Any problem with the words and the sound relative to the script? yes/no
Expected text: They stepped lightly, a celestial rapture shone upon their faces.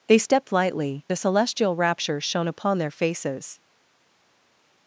no